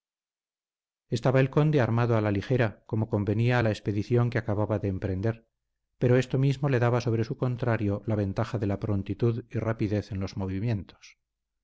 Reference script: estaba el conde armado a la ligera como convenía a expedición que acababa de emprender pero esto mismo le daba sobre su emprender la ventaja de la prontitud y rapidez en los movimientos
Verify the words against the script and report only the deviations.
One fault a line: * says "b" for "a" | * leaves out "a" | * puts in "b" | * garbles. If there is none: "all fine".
* puts in "la"
* says "contrario" for "emprender"